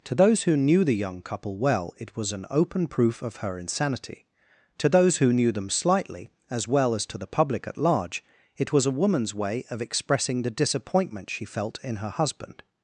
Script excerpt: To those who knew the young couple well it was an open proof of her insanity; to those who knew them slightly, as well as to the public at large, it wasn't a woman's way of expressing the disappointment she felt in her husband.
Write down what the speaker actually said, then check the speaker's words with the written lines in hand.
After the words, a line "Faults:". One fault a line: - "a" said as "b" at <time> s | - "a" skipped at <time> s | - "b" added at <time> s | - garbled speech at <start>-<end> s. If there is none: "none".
To those who knew the young couple well it was an open proof of her insanity; to those who knew them slightly, as well as to the public at large, it was a woman's way of expressing the disappointment she felt in her husband.
Faults:
- "wasn't" said as "was" at 8.7 s